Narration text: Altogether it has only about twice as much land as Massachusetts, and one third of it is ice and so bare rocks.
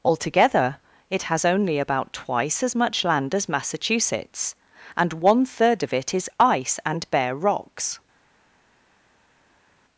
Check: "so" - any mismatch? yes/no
yes